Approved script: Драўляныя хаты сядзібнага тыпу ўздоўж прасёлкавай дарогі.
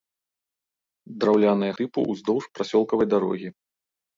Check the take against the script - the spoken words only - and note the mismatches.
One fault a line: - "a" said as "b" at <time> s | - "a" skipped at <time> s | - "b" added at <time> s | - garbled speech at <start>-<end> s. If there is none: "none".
- "хаты сядзібнага" skipped at 1.7 s